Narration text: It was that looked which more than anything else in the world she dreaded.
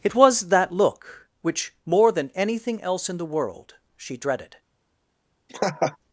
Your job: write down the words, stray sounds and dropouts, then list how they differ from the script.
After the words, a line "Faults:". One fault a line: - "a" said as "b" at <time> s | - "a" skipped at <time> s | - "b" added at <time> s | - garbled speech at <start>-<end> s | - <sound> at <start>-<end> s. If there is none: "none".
It was that look which more than anything else in the world she dreaded.
Faults:
- "looked" said as "look" at 0.7 s
- laugh at 5.5-6.0 s